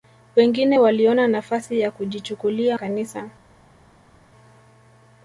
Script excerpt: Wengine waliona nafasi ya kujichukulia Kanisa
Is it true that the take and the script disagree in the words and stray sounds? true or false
false